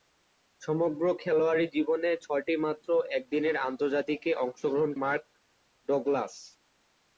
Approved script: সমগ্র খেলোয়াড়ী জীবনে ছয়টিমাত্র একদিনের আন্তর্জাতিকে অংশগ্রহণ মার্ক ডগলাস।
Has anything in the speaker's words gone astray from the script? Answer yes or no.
no